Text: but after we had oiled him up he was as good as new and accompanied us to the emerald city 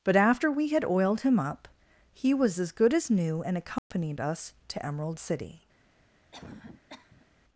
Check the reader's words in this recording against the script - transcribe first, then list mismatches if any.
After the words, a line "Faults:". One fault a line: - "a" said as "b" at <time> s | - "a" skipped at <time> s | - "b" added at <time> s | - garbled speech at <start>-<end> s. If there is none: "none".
but after we had oiled him up he was as good as new and accompanied us to emerald city
Faults:
- "the" skipped at 4.8 s